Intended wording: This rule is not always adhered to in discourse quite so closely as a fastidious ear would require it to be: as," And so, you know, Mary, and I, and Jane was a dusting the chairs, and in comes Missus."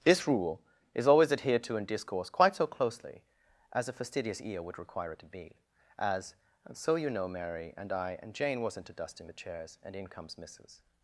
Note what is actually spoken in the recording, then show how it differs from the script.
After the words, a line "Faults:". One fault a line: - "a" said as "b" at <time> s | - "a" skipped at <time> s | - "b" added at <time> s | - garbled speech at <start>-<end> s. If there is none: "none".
This rule is always adhered to in discourse quite so closely as a fastidious ear would require it to be: as," And so, you know, Mary, and I, and Jane wasn't a dusting the chairs, and in comes Missus."
Faults:
- "not" skipped at 1.1 s
- "was" said as "wasn't" at 8.6 s